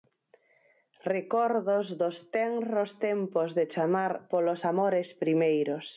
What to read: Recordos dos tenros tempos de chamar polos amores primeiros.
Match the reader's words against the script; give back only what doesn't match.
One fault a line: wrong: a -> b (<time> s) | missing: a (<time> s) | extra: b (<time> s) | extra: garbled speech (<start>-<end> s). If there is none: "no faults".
no faults